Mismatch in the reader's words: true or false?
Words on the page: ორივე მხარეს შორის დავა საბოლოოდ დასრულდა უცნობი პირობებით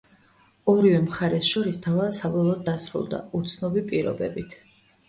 false